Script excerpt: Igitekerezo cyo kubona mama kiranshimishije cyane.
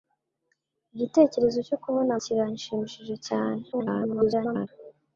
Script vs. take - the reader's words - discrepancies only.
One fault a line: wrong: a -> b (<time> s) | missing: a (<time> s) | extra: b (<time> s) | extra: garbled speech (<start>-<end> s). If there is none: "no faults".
missing: mama (2.1 s)
extra: garbled speech (3.7-4.7 s)